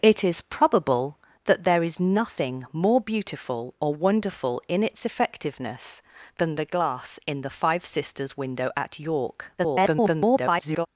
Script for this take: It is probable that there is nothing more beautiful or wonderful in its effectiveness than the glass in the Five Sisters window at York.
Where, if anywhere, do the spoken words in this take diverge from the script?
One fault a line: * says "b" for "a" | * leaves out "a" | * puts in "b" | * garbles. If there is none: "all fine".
* garbles